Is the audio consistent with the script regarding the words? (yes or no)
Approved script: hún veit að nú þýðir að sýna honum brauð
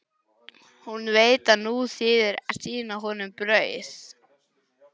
yes